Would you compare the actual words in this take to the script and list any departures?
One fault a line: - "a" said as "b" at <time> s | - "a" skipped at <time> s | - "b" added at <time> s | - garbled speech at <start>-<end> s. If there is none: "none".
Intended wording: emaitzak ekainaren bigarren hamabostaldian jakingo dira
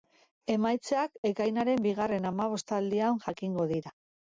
none